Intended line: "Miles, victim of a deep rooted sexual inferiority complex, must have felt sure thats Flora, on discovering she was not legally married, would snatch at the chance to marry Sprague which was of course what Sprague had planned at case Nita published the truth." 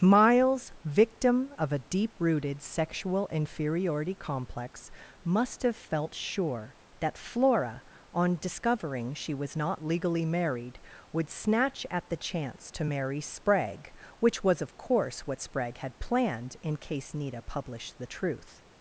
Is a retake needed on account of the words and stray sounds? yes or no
yes